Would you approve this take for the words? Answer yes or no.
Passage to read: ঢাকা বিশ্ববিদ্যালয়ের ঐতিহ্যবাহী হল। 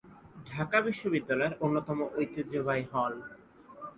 no